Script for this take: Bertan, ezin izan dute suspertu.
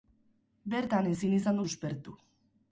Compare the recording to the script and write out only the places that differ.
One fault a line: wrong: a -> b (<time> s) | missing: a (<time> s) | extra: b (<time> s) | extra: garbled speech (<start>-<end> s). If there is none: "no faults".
missing: dute (1.6 s)